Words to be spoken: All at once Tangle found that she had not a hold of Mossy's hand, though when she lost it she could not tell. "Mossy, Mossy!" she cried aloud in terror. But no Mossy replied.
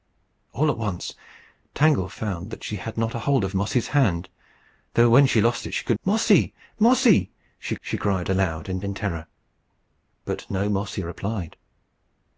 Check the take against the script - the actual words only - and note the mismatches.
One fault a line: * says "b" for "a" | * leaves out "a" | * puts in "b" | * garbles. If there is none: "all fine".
* leaves out "not tell"
* puts in "she"
* puts in "in"